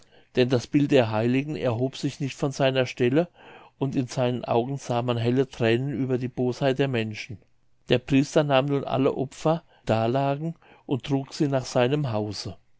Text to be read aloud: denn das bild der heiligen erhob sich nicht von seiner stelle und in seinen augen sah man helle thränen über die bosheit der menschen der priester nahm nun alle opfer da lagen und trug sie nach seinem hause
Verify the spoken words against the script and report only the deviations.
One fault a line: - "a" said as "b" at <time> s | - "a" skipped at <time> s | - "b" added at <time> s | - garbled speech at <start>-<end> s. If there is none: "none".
none